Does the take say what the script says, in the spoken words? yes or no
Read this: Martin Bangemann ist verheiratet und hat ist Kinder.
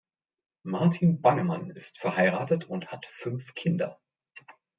no